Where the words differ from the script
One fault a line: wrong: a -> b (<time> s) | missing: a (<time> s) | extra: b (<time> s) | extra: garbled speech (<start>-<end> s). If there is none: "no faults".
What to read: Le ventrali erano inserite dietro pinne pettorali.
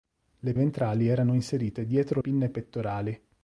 no faults